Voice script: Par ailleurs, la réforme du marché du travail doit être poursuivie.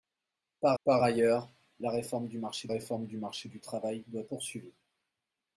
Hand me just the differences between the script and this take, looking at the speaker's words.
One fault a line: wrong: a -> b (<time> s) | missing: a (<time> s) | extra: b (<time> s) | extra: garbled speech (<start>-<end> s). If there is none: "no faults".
extra: par (0.8 s)
extra: réforme (2.7 s)
extra: marché du (3.2 s)
missing: être (4.2 s)